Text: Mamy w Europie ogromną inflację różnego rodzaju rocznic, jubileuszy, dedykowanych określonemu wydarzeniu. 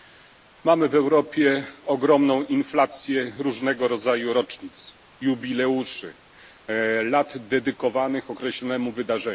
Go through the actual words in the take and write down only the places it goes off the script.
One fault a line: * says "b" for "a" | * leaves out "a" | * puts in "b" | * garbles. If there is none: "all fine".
* puts in "lat"